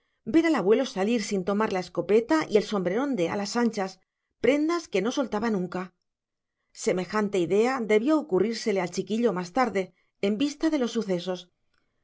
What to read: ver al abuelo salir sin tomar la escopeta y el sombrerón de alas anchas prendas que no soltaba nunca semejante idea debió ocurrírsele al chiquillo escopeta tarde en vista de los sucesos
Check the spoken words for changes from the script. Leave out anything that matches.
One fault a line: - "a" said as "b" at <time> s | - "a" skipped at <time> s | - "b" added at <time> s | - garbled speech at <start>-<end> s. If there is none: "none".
- "escopeta" said as "más" at 9.3 s